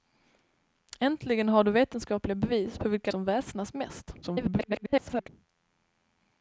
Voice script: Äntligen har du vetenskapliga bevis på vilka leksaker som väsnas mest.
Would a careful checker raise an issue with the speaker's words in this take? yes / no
yes